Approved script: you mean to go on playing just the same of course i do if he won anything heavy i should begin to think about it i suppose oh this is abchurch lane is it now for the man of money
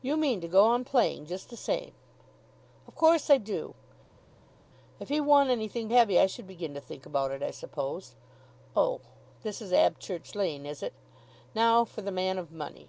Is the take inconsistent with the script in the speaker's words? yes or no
no